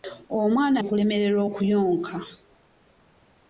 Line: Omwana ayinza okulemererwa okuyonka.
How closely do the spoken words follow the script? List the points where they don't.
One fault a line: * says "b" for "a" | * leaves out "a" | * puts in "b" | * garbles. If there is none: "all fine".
* leaves out "ayinza"